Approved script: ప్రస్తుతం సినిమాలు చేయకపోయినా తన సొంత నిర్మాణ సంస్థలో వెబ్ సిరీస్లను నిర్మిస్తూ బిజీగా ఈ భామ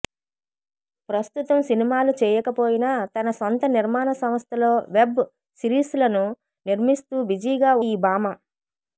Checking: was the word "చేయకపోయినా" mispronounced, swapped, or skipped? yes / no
no